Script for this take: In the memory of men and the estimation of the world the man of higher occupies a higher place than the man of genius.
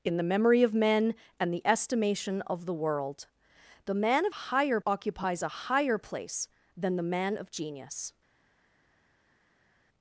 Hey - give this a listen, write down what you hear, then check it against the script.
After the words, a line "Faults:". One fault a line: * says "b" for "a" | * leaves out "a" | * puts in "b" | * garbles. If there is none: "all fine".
In the memory of men and the estimation of the world the man of higher occupies a higher place than the man of genius.
Faults:
all fine